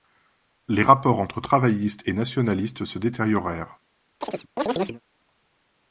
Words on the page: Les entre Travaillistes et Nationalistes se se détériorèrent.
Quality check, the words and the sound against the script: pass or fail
fail